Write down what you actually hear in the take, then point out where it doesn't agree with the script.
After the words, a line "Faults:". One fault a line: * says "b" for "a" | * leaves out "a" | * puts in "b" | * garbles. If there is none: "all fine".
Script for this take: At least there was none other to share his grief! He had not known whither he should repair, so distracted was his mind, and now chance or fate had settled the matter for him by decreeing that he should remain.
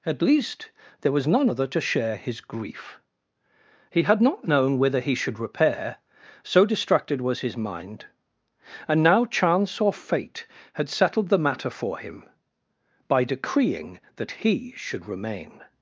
At least there was none other to share his grief! He had not known whither he should repair, so distracted was his mind, and now chance or fate had settled the matter for him by decreeing that he should remain.
Faults:
all fine